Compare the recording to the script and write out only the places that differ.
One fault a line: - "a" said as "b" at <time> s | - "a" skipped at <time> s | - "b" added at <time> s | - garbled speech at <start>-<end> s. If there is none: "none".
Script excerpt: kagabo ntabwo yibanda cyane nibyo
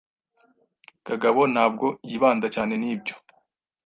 none